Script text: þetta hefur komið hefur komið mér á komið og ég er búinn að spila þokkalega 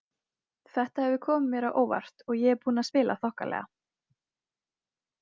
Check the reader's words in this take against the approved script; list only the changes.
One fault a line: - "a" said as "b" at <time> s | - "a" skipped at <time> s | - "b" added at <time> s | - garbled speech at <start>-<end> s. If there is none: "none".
- "hefur komið" skipped at 1.5 s
- "komið" said as "óvart" at 1.8 s